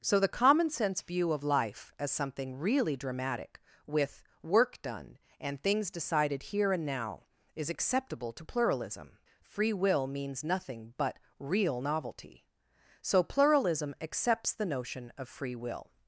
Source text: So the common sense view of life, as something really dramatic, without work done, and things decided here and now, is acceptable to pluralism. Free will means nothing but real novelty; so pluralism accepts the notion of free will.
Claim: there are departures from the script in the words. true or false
true